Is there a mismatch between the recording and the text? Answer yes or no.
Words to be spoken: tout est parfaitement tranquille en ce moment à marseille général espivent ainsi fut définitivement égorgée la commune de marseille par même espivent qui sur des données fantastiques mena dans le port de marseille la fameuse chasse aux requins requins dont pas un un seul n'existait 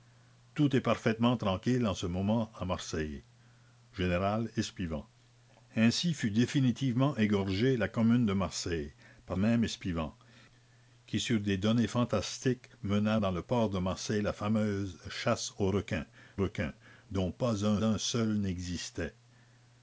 no